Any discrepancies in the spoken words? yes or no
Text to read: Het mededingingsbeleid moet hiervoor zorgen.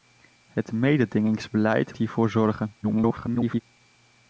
yes